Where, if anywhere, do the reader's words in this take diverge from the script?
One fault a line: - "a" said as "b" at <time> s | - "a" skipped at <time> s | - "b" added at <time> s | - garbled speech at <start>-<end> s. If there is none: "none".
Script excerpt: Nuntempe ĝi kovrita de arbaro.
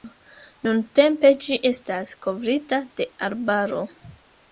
- "estas" added at 1.7 s